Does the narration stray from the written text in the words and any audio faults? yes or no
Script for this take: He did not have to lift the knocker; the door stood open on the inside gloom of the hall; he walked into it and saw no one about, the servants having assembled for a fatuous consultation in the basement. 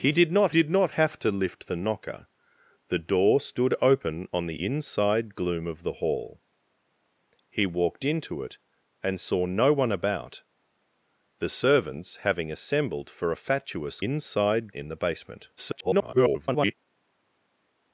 yes